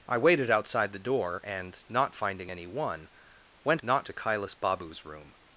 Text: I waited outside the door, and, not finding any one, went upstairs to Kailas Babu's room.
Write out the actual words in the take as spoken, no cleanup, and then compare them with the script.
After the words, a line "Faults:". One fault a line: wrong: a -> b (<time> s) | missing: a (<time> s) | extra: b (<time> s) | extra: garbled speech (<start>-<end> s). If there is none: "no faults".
I waited outside the door, and, not finding any one, went not to Kailas Babu's room.
Faults:
wrong: upstairs -> not (3.8 s)